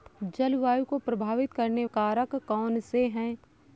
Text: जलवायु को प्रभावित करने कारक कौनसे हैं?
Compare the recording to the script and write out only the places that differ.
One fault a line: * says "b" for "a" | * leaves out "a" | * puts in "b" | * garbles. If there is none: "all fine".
all fine